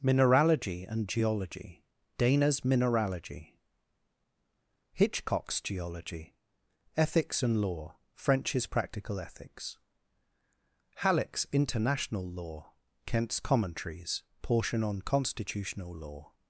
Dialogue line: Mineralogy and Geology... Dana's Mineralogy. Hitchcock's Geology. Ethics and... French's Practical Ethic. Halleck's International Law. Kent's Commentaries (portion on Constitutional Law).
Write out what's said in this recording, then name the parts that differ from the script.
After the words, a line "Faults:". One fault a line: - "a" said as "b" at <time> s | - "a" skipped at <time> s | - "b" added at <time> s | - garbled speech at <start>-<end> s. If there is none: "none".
Mineralogy and Geology... Dana's Mineralogy. Hitchcock's Geology. Ethics and Law... French's Practical Ethics. Halleck's International Law. Kent's Commentaries (portion on Constitutional Law).
Faults:
- "Law" added at 7.6 s
- "Ethic" said as "Ethics" at 9.2 s